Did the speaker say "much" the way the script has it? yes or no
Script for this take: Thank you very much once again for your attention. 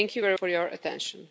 no